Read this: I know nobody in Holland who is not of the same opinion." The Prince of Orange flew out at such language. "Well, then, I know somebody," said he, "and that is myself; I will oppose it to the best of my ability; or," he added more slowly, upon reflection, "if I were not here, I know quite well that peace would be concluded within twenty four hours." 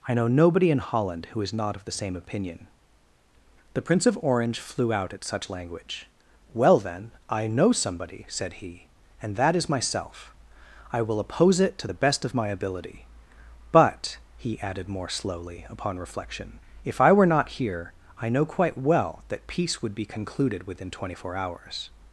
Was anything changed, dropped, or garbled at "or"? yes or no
yes